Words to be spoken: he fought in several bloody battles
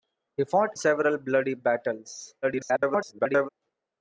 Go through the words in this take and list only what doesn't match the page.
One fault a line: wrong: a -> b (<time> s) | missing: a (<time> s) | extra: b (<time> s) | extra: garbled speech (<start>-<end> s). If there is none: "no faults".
missing: in (0.8 s)
extra: garbled speech (2.4-3.5 s)